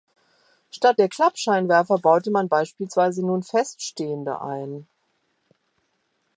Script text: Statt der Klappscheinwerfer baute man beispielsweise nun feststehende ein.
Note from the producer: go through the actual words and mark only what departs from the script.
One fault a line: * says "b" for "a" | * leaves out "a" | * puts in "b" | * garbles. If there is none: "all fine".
all fine